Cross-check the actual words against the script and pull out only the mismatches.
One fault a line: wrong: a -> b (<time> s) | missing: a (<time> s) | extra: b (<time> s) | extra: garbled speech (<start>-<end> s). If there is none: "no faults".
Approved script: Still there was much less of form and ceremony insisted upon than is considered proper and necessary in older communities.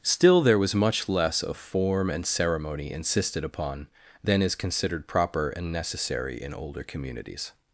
no faults